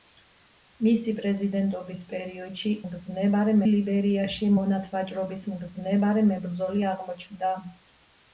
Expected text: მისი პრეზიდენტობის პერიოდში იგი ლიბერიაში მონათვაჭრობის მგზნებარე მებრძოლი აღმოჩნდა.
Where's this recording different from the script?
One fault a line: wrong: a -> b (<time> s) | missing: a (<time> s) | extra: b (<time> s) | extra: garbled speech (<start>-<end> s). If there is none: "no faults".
wrong: იგი -> მგზნებარე (2.9 s)